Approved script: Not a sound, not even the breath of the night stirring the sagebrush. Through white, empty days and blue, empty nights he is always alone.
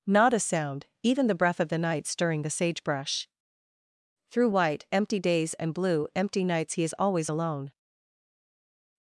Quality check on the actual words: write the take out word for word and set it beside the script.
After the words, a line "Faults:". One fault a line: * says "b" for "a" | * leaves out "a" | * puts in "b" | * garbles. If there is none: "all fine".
Not a sound, even the breath of the night stirring the sagebrush. Through white, empty days and blue, empty nights he is always alone.
Faults:
* leaves out "not"